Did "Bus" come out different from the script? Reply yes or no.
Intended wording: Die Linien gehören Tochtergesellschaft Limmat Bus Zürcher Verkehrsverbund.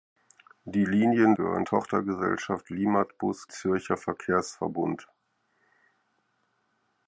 no